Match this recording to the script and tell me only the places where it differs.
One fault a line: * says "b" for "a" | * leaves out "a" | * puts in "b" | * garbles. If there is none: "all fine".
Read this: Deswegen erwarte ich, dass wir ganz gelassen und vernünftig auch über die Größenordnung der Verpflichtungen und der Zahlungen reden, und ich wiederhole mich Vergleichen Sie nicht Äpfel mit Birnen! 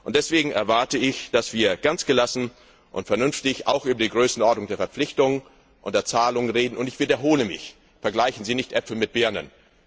all fine